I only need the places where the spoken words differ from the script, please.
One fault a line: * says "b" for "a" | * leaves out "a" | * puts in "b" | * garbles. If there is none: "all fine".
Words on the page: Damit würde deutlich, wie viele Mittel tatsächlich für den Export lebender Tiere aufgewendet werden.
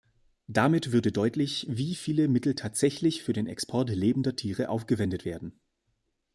all fine